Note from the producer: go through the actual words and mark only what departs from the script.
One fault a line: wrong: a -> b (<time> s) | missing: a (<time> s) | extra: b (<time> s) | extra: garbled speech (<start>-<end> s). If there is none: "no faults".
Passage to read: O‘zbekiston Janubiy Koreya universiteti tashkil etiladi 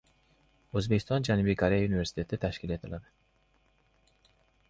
no faults